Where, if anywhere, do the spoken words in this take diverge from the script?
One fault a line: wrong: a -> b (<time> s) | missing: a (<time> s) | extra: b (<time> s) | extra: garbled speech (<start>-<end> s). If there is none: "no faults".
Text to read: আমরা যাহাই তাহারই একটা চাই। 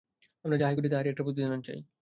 extra: করি (0.8 s)
extra: প্রতিদান (1.3 s)